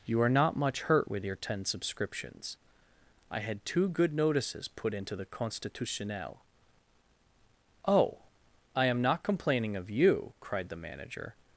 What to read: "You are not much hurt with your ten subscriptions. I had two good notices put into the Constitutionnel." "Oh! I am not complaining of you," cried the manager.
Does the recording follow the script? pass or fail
pass